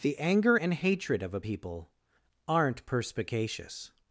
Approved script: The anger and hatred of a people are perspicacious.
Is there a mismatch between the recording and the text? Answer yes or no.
yes